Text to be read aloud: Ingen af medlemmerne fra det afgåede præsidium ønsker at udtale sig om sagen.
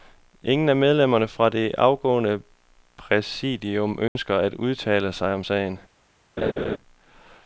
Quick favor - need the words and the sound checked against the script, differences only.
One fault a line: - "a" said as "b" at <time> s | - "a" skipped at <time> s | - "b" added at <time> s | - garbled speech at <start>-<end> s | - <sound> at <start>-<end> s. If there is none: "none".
- dropout at 4.1-4.2 s
- laugh at 6.4-6.8 s